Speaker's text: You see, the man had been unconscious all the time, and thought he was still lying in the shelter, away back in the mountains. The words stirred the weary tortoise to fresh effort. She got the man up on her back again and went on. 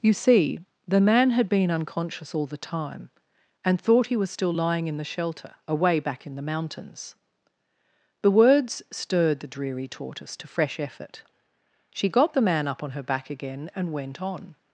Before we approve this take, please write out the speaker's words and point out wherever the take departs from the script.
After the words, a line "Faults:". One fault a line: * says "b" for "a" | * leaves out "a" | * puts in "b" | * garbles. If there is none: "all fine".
You see, the man had been unconscious all the time, and thought he was still lying in the shelter, away back in the mountains. The words stirred the dreary tortoise to fresh effort. She got the man up on her back again and went on.
Faults:
* says "dreary" for "weary"